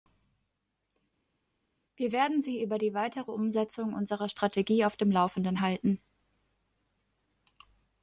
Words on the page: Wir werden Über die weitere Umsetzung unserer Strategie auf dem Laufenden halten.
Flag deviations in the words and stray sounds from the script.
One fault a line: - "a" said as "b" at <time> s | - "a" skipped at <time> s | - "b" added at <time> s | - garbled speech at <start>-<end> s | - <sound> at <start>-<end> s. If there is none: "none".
- "Sie" added at 2.4 s